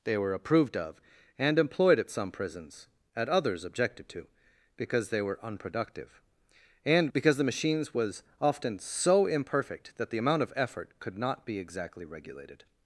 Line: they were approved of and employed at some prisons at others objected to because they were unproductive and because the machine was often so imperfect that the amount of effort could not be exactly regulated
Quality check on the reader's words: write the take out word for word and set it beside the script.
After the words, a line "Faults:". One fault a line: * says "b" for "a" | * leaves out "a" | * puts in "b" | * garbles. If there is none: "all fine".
they were approved of and employed at some prisons at others objected to because they were unproductive and because the machines was often so imperfect that the amount of effort could not be exactly regulated
Faults:
* says "machines" for "machine"